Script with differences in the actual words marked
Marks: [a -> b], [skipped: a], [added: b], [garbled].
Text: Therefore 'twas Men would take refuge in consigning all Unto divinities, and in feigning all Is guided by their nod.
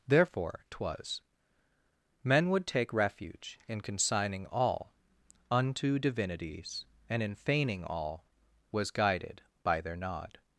Therefore 'twas Men would take refuge in consigning all Unto divinities, and in feigning all [Is -> Was] guided by their nod.